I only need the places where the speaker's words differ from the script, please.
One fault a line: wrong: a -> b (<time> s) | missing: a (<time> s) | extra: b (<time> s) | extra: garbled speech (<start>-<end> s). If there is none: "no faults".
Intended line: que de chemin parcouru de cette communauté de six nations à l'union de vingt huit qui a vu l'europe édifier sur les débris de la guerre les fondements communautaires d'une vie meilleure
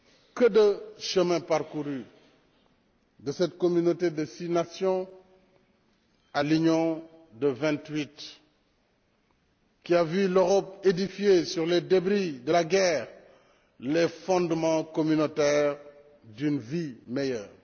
no faults